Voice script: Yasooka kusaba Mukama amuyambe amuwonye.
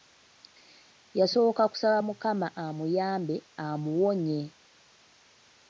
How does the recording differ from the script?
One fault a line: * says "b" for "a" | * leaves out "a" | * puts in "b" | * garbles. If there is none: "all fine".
all fine